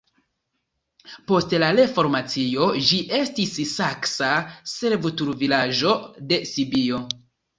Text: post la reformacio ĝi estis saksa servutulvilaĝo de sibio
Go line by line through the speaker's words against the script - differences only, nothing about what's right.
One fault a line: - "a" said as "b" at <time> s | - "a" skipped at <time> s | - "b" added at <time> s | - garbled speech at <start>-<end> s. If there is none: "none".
none